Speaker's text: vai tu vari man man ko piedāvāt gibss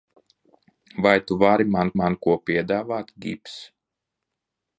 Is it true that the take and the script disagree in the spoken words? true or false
false